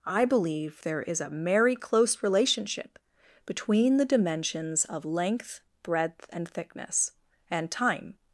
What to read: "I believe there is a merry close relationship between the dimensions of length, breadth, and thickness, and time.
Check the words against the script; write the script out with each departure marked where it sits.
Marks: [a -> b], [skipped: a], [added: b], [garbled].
"I believe there is a merry close relationship between the dimensions of length, breadth, and thickness, and time.